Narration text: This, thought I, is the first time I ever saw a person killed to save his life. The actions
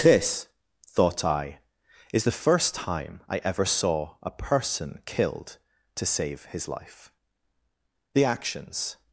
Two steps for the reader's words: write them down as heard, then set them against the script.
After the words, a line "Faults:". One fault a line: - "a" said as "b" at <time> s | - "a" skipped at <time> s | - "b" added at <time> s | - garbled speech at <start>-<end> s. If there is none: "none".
This, thought I, is the first time I ever saw a person killed to save his life. The actions
Faults:
none